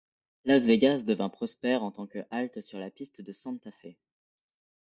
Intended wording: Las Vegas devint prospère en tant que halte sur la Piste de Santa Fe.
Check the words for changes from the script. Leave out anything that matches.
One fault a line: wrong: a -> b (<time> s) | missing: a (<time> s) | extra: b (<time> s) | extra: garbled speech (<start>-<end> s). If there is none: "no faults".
no faults